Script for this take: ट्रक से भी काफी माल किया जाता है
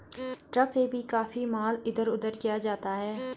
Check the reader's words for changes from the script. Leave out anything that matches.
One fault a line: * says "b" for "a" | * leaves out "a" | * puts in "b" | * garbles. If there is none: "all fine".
* puts in "इधर उधर"